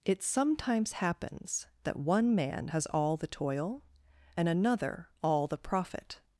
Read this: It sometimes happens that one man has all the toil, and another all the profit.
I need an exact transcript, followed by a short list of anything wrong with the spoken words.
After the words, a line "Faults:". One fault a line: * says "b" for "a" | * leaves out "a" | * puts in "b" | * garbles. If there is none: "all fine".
It sometimes happens that one man has all the toil, and another all the profit.
Faults:
all fine